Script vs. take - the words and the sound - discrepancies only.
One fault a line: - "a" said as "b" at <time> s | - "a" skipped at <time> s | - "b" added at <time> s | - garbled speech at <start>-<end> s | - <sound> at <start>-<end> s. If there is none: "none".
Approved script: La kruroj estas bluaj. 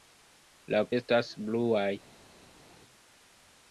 - "kruroj" skipped at 0.8 s